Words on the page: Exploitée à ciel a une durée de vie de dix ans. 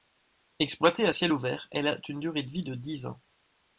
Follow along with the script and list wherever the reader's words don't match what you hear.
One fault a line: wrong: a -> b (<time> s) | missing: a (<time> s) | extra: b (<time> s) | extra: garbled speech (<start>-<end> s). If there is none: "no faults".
extra: ouvert elle (1.3 s)